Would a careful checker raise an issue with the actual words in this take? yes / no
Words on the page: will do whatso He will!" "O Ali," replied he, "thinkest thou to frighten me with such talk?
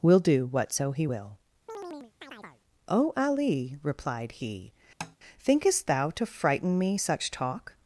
yes